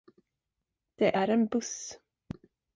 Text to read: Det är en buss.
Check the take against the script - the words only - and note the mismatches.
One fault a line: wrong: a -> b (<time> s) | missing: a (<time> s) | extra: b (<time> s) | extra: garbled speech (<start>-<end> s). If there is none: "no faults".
no faults